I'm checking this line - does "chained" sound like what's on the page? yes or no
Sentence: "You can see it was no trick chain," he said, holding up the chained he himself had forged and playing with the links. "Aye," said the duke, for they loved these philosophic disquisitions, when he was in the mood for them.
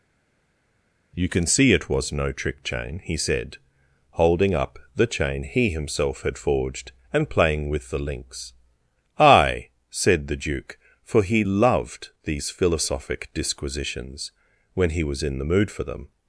no